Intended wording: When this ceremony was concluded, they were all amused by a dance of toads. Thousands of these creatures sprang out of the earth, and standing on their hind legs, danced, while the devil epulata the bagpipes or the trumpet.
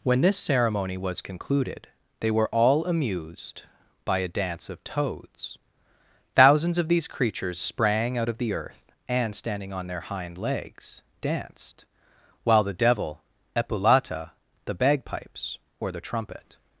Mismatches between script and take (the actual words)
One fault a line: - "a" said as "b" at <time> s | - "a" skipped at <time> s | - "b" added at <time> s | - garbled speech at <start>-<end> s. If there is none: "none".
none